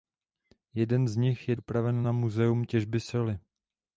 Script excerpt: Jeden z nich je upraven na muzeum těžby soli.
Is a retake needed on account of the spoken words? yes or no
no